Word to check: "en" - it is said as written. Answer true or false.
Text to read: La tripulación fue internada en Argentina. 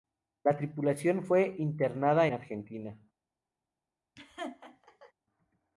false